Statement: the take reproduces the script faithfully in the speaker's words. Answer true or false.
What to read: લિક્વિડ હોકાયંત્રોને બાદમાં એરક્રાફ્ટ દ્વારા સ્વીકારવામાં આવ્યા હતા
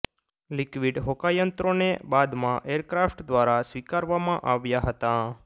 true